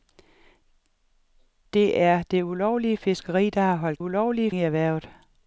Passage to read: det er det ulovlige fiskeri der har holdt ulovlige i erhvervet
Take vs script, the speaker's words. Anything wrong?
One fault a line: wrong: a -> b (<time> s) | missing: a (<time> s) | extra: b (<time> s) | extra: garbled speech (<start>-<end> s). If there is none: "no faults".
no faults